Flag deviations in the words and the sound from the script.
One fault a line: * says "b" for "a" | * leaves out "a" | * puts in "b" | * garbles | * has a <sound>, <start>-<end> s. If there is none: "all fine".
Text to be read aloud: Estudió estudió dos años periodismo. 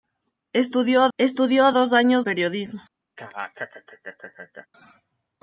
* has a laugh, 3.2-4.7 s